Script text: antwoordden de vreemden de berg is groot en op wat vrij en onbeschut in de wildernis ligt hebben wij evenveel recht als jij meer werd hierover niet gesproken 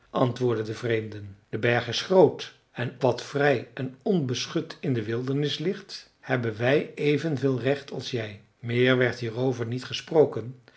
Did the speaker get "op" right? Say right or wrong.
wrong